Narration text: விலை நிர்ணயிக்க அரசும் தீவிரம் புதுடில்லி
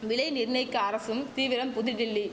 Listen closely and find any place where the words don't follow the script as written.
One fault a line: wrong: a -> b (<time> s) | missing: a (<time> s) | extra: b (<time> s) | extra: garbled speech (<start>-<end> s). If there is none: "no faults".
no faults